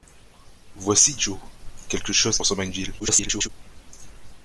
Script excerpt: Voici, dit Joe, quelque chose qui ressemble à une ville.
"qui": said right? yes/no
no